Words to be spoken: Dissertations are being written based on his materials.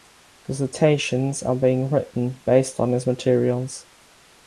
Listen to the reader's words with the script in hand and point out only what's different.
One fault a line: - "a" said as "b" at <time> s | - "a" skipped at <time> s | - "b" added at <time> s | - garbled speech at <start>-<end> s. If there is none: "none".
none